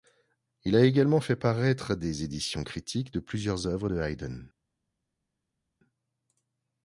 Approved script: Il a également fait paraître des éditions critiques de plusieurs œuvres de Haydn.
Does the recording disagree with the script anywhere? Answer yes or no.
no